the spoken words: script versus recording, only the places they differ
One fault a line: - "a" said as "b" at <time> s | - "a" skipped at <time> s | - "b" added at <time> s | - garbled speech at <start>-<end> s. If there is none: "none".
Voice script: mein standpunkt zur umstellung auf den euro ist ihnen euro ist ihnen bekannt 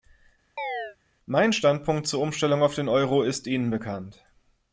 - "euro ist ihnen" skipped at 3.7 s